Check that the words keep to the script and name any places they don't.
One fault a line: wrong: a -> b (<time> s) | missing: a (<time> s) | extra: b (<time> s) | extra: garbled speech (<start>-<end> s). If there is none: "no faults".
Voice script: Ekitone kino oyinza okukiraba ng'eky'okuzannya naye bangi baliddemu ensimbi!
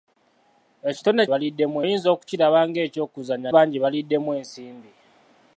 wrong: kino -> baliddemu (1.3 s)
missing: naye (3.5 s)